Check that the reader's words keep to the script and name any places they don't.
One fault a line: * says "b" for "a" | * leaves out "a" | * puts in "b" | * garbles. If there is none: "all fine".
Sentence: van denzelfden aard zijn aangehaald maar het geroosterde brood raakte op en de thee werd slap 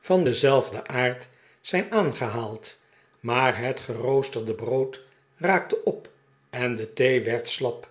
all fine